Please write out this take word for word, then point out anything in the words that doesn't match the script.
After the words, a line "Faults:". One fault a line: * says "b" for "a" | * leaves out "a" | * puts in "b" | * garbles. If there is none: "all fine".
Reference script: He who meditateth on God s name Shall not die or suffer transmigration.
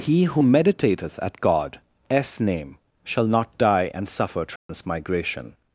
He who meditateth at God s name Shall not die and suffer transmigration.
Faults:
* says "at" for "on"
* says "and" for "or"